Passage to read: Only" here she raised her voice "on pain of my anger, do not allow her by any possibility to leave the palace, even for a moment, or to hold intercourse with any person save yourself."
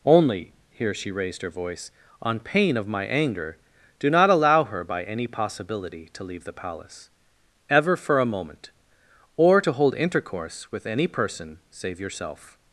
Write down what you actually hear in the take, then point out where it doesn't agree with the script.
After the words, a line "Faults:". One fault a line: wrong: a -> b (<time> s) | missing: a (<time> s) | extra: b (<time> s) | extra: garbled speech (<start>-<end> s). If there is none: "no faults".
Only" here she raised her voice "on pain of my anger, do not allow her by any possibility to leave the palace, ever for a moment, or to hold intercourse with any person save yourself."
Faults:
wrong: even -> ever (7.7 s)